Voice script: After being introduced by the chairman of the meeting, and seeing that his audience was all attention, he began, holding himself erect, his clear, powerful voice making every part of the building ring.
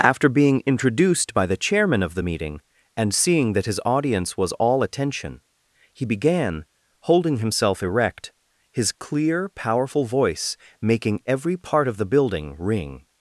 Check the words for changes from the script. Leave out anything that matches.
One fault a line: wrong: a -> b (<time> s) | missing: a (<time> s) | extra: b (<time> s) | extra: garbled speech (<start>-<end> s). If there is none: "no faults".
no faults